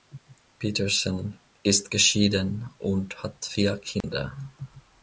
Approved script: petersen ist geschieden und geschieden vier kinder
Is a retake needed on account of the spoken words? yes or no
yes